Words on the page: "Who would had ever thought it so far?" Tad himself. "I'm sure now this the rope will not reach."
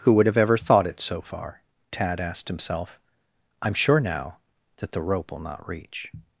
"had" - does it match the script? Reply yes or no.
no